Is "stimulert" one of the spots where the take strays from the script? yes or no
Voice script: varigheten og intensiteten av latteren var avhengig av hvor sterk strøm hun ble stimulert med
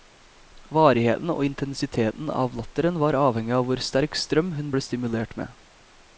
no